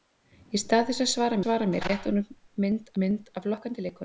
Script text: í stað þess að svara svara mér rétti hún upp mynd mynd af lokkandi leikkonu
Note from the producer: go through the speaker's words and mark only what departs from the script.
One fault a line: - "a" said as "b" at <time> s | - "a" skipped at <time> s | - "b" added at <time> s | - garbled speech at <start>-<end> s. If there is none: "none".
none